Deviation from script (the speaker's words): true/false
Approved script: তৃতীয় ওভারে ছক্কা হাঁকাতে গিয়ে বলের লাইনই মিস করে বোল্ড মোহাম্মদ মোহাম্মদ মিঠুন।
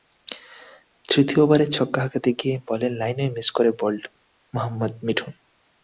true